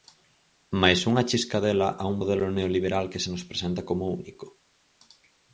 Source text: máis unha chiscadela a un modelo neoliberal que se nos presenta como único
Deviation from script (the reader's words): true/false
false